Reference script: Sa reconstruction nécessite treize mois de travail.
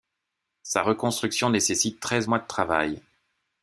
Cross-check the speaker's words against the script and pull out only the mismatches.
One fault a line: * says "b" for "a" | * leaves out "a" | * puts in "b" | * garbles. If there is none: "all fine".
all fine